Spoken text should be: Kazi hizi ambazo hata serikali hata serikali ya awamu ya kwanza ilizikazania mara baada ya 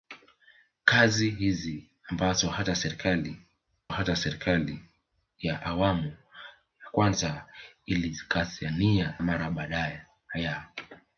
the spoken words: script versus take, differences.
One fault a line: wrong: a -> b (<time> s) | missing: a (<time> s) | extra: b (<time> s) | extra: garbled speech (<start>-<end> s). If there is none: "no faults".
no faults